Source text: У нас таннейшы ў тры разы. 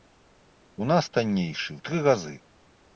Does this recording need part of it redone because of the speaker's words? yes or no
no